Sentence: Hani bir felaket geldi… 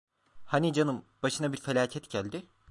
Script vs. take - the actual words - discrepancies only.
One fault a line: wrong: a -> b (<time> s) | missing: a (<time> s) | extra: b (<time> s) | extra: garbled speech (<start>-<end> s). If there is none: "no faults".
extra: canım başına (0.7 s)